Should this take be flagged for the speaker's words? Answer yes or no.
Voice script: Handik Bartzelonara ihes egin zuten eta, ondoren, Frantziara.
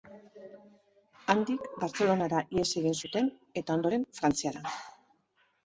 no